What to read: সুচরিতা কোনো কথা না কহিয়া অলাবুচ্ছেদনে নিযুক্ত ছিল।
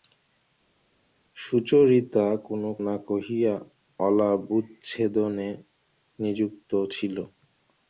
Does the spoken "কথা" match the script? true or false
false